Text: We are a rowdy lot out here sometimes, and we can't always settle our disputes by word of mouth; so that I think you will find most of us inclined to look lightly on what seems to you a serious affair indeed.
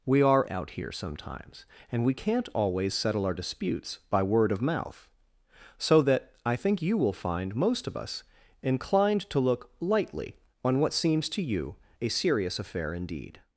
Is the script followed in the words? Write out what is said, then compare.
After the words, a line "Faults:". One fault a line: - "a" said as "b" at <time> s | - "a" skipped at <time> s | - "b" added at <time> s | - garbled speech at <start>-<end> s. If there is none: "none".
We are out here sometimes, and we can't always settle our disputes by word of mouth; so that I think you will find most of us inclined to look lightly on what seems to you a serious affair indeed.
Faults:
- "a rowdy lot" skipped at 0.5 s